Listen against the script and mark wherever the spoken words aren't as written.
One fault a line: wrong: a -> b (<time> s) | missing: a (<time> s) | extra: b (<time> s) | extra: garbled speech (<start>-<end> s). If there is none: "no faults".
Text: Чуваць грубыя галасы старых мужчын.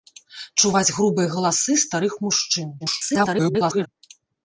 extra: garbled speech (2.8-3.9 s)